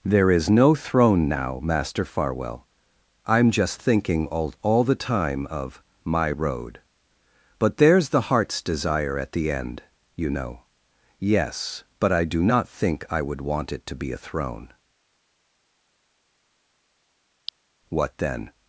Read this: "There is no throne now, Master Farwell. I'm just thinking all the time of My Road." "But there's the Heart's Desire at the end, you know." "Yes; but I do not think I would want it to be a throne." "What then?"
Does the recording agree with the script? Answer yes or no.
no